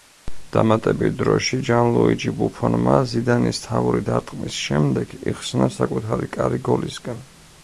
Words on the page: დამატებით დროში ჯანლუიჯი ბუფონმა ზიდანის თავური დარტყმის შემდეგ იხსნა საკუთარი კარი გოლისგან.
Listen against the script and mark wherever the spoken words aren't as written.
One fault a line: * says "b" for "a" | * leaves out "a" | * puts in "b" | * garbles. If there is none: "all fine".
all fine